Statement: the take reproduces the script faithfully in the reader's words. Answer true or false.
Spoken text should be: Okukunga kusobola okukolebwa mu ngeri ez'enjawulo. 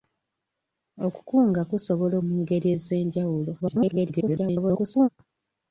false